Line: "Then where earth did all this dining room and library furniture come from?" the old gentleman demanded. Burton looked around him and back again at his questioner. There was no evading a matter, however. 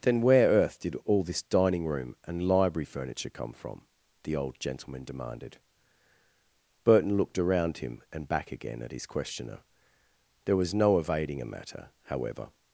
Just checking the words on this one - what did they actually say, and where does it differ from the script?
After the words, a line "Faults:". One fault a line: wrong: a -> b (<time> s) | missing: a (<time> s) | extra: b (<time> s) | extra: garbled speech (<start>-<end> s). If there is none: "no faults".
"Then where earth did all this dining room and library furniture come from?" the old gentleman demanded. Burton looked around him and back again at his questioner. There was no evading a matter, however.
Faults:
no faults